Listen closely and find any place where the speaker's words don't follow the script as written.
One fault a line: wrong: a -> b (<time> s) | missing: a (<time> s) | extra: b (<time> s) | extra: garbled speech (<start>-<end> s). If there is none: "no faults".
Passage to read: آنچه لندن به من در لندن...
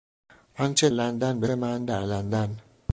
no faults